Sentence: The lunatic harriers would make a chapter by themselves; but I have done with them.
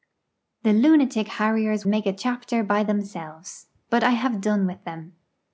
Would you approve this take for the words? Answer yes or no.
no